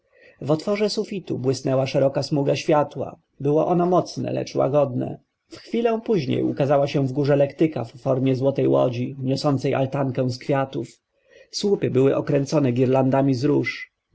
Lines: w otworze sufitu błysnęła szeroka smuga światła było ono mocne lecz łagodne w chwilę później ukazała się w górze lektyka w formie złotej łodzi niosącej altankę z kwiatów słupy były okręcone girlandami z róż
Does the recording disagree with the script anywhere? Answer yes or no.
no